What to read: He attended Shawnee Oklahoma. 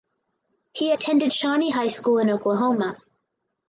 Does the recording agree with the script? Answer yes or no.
no